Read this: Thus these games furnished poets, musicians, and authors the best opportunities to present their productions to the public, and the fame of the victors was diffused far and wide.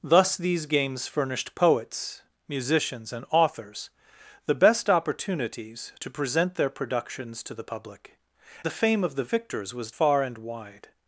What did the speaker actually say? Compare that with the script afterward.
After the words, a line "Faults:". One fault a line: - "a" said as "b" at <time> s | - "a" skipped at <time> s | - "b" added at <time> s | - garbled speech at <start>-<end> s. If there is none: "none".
Thus these games furnished poets, musicians, and authors the best opportunities to present their productions to the public, the fame of the victors was far and wide.
Faults:
- "and" skipped at 8.2 s
- "diffused" skipped at 9.9 s